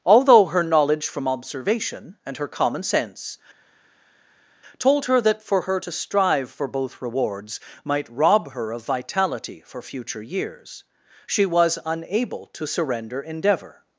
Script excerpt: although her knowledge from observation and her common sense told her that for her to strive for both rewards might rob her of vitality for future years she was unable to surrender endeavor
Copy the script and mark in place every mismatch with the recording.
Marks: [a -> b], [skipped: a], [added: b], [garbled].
although her knowledge from observation and her common sense told her that for her to strive for both rewards might rob her of vitality for future years she was unable to surrender endeavor